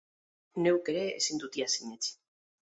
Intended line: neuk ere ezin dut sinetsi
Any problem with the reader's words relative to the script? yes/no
yes